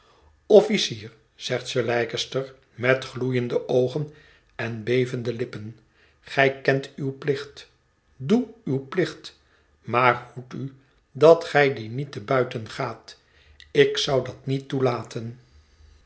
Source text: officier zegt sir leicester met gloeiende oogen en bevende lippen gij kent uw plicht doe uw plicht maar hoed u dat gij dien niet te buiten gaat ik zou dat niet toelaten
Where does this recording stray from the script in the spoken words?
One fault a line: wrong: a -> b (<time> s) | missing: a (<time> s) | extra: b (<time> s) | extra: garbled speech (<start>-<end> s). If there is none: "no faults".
no faults